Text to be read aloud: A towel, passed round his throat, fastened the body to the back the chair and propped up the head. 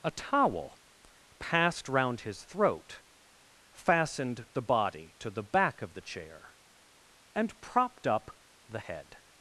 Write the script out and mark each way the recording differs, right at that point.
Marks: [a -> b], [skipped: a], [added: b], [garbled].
A towel, passed round his throat, fastened the body to the back [added: of] the chair and propped up the head.